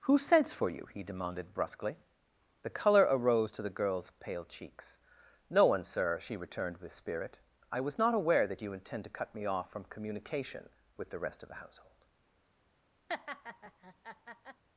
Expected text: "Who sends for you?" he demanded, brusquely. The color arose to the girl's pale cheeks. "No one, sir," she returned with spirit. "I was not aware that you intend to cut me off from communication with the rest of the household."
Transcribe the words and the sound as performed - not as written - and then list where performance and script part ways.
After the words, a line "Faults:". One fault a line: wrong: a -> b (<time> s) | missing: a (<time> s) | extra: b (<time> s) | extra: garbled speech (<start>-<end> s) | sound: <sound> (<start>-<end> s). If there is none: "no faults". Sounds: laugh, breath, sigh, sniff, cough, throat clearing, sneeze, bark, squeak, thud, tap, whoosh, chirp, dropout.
"Who sends for you?" he demanded, brusquely. The color arose to the girl's pale cheeks. "No one, sir," she returned with spirit. "I was not aware that you intend to cut me off from communication with the rest of the household."
Faults:
sound: laugh (13.1-14.6 s)